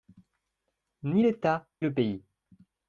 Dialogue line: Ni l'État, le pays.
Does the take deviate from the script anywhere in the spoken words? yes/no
no